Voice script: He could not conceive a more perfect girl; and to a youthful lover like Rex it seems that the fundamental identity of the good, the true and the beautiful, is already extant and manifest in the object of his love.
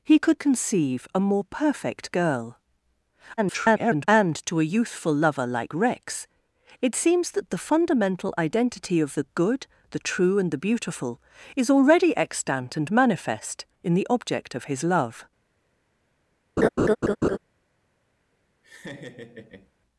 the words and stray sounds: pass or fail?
fail